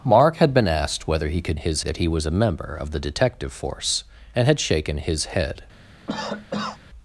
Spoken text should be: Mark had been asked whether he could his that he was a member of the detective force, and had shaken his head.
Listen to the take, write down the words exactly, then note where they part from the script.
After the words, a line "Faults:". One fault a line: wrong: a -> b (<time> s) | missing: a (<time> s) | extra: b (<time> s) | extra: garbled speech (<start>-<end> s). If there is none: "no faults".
Mark had been asked whether he could his that he was a member of the detective force, and had shaken his head.
Faults:
no faults